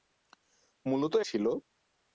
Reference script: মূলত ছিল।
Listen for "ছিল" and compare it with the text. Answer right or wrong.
right